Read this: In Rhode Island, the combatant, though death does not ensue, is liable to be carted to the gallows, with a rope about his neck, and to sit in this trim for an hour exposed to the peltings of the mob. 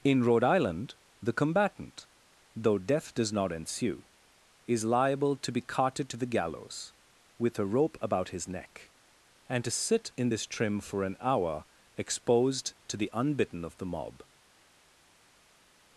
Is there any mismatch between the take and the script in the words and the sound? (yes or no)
yes